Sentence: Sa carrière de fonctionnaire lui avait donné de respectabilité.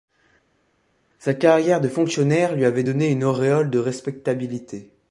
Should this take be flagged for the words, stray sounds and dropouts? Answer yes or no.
yes